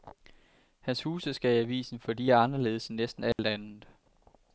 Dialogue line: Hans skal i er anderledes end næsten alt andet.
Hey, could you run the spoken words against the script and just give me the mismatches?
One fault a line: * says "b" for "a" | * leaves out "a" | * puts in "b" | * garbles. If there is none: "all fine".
* puts in "huse"
* puts in "avisen for de"